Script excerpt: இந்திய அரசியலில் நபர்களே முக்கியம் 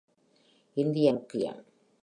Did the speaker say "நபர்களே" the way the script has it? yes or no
no